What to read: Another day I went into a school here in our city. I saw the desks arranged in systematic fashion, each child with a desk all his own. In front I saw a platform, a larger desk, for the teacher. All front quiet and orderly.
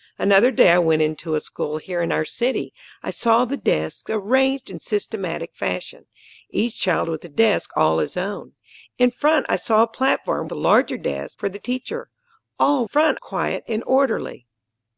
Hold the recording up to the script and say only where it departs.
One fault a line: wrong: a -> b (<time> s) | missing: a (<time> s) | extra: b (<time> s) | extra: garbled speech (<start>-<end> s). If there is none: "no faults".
no faults